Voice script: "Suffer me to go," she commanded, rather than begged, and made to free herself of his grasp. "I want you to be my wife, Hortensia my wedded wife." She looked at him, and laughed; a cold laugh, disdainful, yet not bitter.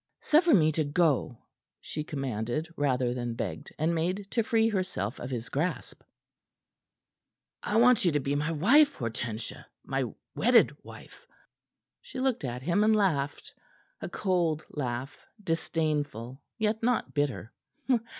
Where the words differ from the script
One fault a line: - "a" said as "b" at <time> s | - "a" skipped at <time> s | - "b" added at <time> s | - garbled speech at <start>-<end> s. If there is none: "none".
none